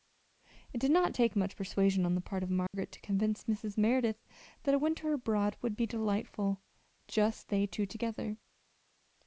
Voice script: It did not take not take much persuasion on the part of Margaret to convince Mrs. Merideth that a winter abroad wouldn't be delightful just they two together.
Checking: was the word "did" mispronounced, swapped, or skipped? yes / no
no